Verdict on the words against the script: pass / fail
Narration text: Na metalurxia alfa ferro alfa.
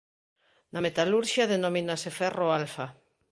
fail